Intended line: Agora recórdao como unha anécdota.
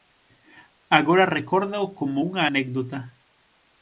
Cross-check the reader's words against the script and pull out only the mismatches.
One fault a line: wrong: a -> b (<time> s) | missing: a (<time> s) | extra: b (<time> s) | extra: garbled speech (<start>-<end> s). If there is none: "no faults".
no faults